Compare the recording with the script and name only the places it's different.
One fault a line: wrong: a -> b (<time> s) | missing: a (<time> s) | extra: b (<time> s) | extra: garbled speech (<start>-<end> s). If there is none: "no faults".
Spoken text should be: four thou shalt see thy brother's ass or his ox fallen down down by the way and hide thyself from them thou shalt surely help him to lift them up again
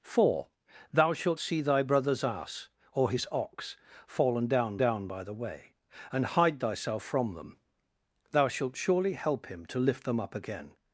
no faults